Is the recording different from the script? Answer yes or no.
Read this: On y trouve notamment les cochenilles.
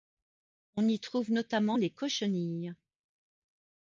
no